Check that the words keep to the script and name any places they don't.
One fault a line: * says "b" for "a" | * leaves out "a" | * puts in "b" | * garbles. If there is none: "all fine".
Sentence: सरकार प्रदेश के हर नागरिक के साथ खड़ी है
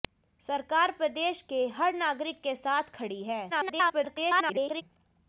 * garbles